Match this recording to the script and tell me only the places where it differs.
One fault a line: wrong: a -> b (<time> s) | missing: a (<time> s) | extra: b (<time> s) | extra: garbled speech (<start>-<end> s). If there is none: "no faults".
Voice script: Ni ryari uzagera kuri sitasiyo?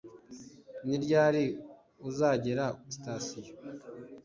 missing: kuri (2.6 s)